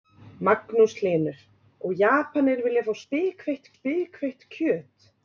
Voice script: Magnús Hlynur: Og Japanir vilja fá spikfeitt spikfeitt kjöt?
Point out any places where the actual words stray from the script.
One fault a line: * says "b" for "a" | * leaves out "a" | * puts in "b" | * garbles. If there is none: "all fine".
all fine